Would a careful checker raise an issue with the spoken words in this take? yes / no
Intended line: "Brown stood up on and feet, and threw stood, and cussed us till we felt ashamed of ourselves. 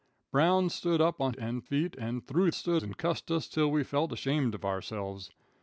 no